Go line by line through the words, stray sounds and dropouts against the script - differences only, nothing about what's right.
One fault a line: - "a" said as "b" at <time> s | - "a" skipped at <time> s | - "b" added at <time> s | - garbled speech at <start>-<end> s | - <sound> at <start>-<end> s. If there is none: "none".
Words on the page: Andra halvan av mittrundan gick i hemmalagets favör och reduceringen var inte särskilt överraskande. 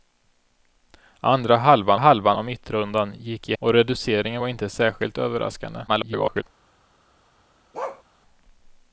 - "halvan" added at 2.0 s
- "hemmalagets favör" skipped at 3.6 s
- garbled speech at 5.9-6.4 s
- bark at 7.7-8.0 s